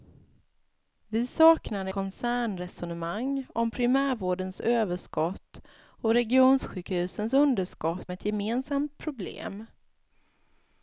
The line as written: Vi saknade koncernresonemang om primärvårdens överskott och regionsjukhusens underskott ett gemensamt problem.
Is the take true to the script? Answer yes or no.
yes